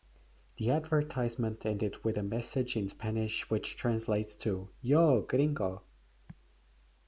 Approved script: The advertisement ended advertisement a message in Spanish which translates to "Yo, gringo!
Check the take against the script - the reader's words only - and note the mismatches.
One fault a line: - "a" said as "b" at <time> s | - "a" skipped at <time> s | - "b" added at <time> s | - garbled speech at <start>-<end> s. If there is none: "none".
- "advertisement" said as "with" at 2.0 s